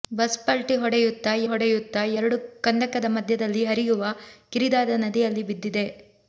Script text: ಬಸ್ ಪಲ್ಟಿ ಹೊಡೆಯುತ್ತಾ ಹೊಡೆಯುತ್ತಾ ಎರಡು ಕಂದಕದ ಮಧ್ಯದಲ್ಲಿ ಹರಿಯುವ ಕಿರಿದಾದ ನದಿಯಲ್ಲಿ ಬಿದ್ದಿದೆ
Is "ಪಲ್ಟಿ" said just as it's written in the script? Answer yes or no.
yes